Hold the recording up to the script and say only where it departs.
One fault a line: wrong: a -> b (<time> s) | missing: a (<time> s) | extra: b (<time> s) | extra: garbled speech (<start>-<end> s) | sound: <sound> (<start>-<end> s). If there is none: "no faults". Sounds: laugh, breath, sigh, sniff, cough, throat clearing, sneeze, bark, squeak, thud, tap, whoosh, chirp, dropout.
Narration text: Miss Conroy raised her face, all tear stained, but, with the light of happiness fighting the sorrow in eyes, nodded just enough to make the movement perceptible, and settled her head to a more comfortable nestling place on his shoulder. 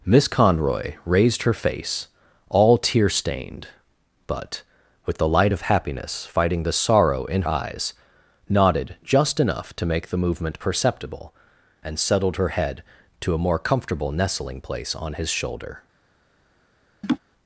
sound: laugh (17.0-17.2 s)